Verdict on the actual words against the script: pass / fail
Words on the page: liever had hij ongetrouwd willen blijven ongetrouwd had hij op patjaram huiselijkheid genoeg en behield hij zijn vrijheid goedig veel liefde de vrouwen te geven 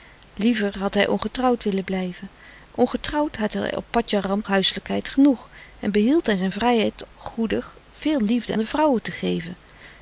pass